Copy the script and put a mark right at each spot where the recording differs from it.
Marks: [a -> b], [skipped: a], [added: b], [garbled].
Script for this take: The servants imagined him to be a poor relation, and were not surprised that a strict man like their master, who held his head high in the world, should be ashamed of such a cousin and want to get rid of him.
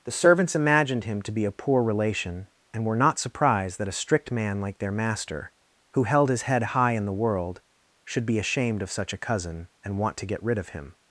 The servants imagined him to be a poor relation, and were not surprised that a strict man like their master, who held his head high in the world, should be ashamed of such a cousin and want to get rid of him.